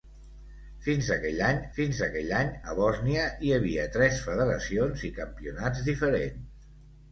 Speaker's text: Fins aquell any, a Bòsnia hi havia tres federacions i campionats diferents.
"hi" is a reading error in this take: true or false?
false